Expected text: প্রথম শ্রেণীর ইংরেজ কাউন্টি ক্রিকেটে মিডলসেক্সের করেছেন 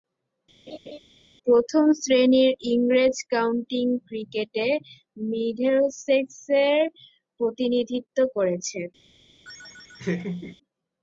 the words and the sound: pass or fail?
fail